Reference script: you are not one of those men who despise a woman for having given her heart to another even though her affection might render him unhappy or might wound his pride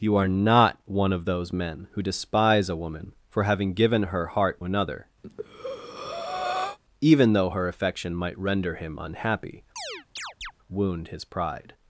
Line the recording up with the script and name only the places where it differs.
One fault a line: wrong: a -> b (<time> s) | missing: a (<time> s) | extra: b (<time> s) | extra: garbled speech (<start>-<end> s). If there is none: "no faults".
missing: to (4.6 s)
missing: or might (9.6 s)